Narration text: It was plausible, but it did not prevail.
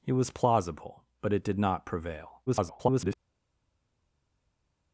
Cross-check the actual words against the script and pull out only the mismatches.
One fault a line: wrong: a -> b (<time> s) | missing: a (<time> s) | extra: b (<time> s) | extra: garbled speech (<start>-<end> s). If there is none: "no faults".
extra: garbled speech (2.5-3.2 s)